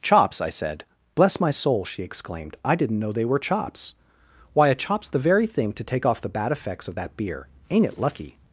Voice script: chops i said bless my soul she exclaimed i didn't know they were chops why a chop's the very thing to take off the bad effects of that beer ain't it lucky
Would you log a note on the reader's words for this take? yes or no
no